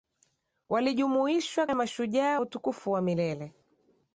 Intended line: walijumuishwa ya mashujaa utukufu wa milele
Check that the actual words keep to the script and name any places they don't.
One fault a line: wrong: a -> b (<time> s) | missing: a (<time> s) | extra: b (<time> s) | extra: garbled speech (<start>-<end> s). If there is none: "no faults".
no faults